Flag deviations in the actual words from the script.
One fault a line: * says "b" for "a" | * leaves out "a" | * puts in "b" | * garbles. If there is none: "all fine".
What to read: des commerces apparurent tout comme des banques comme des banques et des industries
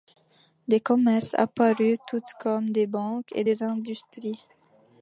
* leaves out "comme des banques"